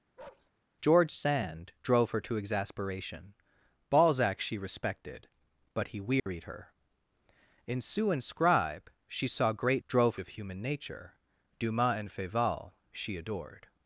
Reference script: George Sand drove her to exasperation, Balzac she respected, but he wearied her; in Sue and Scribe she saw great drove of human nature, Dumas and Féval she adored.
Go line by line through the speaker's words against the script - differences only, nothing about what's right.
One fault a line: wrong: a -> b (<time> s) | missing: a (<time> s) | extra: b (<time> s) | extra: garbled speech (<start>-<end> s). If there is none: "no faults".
no faults